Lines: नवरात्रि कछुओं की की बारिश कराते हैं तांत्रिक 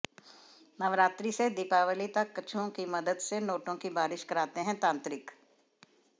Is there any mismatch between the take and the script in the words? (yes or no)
yes